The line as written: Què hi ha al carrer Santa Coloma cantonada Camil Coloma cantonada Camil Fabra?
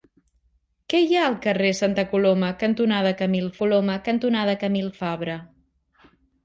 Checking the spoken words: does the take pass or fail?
pass